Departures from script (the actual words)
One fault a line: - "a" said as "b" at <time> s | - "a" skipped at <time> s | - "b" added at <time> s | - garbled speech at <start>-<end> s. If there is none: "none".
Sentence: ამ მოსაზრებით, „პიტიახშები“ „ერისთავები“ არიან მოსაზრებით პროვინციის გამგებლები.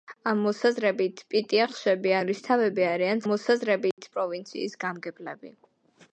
none